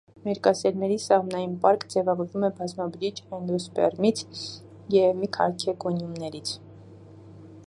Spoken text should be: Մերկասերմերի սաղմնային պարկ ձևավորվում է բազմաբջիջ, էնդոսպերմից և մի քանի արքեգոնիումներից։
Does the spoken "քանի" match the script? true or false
false